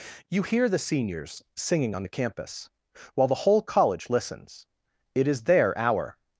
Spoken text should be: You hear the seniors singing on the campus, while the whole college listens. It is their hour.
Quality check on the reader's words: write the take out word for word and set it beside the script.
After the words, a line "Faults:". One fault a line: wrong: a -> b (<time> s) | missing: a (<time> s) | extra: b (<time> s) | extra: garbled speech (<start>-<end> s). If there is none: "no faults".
You hear the seniors singing on the campus, while the whole college listens. It is their hour.
Faults:
no faults